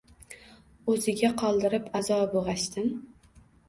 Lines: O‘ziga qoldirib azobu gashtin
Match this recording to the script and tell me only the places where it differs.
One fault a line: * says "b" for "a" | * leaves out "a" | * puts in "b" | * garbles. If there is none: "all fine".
all fine